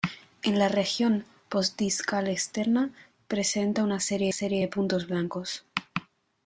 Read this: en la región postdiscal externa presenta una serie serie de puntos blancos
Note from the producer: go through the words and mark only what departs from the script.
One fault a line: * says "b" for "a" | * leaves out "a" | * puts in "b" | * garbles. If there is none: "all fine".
all fine